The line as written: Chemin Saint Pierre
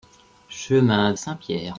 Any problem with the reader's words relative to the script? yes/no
no